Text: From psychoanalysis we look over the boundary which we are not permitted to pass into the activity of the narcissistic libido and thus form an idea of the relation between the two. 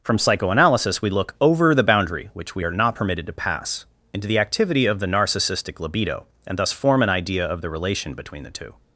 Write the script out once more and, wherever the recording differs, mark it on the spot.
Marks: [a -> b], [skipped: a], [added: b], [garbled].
From psychoanalysis we look over the boundary which we are not permitted to pass into the activity of the narcissistic libido and thus form an idea of the relation between the two.